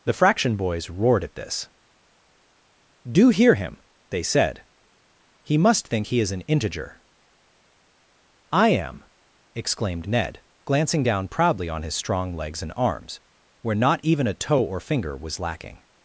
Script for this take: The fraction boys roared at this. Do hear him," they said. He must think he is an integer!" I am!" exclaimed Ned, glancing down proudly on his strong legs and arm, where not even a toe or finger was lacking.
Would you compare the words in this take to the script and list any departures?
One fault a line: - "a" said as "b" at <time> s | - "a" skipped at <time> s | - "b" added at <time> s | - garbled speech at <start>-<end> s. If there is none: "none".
- "arm" said as "arms" at 12.8 s